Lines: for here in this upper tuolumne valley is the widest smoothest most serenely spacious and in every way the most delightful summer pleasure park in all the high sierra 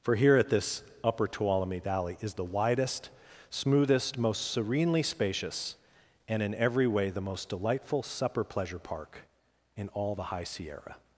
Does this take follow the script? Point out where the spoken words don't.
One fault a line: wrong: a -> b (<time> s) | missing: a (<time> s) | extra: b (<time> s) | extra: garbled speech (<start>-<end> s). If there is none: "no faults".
wrong: in -> at (0.3 s)
wrong: summer -> supper (8.0 s)